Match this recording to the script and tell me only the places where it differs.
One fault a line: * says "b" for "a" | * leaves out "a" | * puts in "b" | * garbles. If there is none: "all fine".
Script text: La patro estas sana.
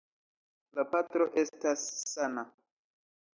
all fine